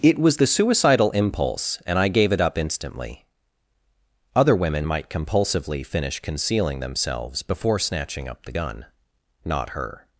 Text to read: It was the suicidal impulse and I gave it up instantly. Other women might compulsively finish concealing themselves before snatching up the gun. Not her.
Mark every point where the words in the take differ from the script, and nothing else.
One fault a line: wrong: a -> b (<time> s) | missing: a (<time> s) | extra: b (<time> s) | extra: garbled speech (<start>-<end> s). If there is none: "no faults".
no faults